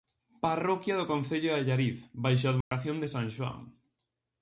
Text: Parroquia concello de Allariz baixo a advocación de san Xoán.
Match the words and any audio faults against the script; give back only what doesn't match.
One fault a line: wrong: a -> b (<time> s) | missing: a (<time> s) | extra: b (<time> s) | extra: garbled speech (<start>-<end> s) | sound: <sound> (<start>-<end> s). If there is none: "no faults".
extra: do (1.0 s)
sound: dropout (2.6-2.7 s)